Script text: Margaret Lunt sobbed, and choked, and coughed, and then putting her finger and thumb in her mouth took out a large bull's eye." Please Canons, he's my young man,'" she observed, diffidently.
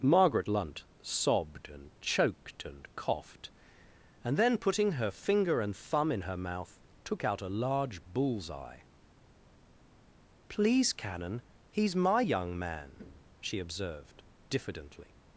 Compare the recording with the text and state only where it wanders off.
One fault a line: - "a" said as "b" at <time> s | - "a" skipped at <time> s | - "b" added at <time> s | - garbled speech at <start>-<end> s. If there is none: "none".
- "Canons" said as "Canon" at 10.9 s